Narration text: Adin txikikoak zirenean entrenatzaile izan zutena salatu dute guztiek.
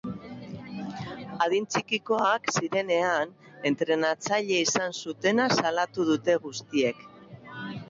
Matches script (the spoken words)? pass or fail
pass